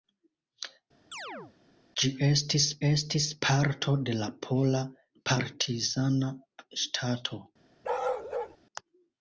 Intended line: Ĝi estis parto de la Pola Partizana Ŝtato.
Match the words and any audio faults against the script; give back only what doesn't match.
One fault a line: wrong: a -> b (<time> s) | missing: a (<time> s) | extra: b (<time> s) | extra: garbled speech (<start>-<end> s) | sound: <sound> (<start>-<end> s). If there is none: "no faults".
sound: chirp (1.1-1.5 s)
extra: estis (2.9 s)
sound: bark (7.8-8.6 s)